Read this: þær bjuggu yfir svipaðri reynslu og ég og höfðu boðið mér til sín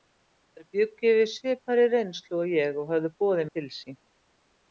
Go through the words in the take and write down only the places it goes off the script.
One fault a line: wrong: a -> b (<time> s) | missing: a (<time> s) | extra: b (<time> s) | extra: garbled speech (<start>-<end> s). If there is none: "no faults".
missing: mér (3.5 s)